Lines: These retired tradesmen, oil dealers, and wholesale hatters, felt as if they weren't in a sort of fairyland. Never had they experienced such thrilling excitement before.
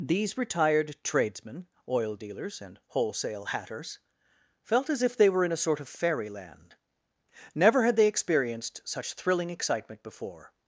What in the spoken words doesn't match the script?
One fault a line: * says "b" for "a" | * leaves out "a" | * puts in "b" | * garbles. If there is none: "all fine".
* says "were" for "weren't"